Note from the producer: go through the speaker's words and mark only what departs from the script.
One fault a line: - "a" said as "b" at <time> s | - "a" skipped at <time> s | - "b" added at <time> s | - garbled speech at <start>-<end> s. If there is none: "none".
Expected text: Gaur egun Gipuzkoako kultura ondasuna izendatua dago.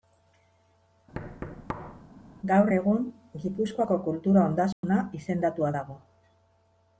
none